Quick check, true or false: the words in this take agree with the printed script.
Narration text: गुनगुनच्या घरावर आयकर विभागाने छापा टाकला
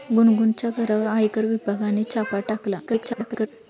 false